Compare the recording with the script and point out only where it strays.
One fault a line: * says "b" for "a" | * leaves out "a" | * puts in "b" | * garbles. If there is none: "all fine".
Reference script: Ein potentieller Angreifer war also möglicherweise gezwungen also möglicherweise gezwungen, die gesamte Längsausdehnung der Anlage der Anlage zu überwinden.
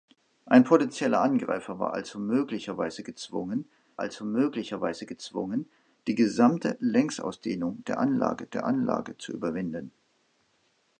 all fine